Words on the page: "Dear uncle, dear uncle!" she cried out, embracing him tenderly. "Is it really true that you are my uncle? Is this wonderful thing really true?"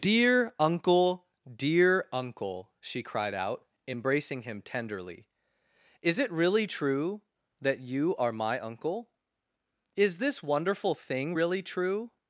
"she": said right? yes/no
yes